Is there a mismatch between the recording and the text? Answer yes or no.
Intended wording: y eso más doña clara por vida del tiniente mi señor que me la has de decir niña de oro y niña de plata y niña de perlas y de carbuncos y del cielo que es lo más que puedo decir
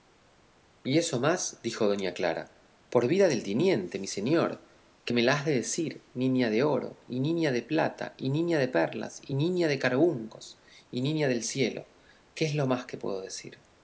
yes